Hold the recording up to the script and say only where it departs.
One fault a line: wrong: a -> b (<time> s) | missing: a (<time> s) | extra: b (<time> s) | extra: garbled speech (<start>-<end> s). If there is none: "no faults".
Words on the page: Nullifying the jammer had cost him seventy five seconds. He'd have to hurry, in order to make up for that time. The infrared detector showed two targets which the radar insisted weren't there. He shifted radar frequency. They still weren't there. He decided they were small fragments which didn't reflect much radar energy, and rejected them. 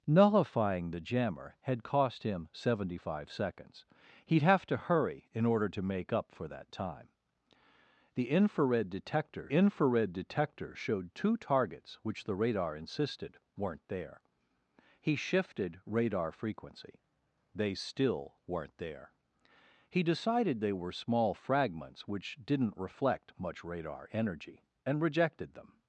extra: infrared detector (9.5 s)